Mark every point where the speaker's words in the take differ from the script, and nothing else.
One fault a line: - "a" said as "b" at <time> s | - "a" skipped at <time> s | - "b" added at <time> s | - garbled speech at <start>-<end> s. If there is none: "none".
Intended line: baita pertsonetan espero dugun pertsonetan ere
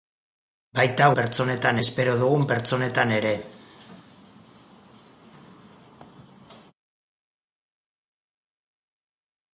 none